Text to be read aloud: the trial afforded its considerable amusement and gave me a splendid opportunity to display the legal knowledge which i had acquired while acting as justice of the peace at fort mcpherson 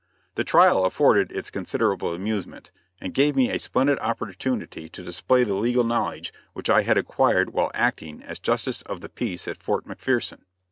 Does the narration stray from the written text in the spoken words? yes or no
no